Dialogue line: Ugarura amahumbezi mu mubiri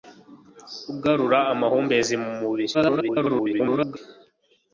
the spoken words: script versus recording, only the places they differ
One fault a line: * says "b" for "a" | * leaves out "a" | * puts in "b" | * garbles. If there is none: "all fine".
* garbles